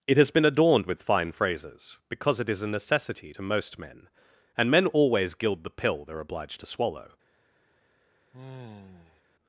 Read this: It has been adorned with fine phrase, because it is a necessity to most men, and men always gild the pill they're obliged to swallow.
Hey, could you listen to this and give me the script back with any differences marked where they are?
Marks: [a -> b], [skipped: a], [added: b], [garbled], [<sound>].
It has been adorned with fine [phrase, -> phrases] because it is a necessity to most men, and men always gild the pill they're obliged to swallow. [sigh]